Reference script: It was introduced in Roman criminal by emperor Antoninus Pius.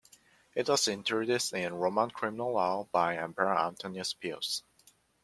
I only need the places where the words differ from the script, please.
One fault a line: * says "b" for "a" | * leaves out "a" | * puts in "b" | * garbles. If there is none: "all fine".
* puts in "law"